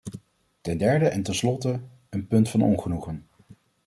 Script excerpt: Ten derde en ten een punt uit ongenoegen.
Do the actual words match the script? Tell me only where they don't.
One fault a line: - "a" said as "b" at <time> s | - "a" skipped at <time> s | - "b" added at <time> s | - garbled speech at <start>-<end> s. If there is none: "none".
- "slotte" added at 1.4 s
- "uit" said as "van" at 2.5 s